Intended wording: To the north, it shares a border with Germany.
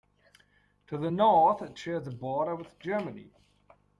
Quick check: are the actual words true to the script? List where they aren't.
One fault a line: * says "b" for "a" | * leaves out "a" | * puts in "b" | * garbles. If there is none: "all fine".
all fine